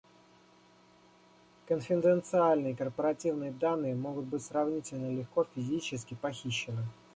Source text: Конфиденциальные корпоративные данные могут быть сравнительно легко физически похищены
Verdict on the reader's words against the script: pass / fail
pass